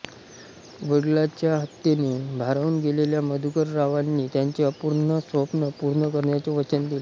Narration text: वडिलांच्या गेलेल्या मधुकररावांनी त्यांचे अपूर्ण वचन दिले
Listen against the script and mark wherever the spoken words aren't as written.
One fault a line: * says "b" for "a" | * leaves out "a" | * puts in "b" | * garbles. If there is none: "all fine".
* puts in "हत्येने भारावून"
* puts in "स्वप्न पूर्ण करण्याचे"